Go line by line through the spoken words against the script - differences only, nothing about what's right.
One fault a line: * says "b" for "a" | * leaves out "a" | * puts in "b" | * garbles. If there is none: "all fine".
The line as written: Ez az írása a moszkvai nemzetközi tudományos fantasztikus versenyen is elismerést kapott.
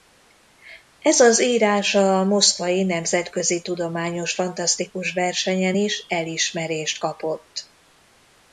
all fine